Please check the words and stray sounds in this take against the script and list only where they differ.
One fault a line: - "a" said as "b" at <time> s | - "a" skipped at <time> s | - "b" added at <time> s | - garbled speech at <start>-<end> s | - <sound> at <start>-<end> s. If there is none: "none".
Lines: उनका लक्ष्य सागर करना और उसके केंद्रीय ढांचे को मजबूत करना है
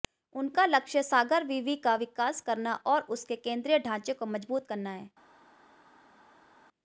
- "विवि का विकास" added at 1.4 s